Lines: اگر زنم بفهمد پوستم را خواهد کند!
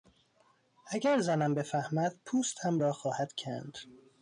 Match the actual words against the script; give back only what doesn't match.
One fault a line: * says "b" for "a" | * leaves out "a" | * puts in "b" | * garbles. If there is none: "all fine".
all fine